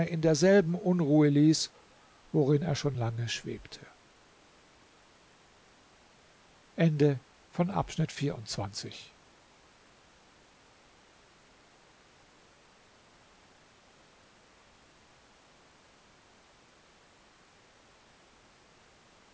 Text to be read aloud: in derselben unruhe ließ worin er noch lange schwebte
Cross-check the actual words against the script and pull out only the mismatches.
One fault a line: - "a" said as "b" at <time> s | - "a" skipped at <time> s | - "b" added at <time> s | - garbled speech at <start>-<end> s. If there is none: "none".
- "noch" said as "schon" at 2.8 s